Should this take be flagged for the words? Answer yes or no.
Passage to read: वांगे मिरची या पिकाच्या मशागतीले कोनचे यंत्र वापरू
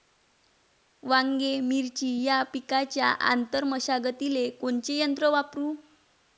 yes